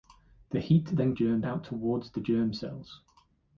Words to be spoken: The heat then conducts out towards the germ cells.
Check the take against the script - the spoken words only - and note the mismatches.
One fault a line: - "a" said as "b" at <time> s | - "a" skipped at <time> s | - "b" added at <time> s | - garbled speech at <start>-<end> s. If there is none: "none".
- "conducts" said as "germ" at 1.1 s